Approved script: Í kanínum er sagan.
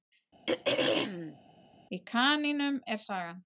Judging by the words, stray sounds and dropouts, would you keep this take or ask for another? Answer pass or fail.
fail